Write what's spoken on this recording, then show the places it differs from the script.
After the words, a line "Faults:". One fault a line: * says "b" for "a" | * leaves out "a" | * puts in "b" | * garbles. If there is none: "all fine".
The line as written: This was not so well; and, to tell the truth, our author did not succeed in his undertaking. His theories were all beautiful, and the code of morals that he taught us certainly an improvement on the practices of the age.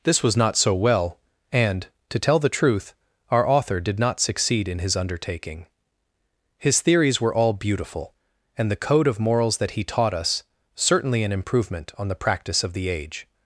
This was not so well; and, to tell the truth, our author did not succeed in his undertaking. His theories were all beautiful, and the code of morals that he taught us certainly an improvement on the practice of the age.
Faults:
* says "practice" for "practices"